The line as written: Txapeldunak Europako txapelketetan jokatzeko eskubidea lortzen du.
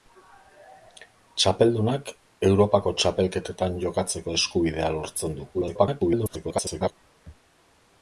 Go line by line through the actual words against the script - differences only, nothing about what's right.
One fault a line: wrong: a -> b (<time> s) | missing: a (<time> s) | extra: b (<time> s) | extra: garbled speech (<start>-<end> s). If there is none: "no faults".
extra: garbled speech (5.5-6.9 s)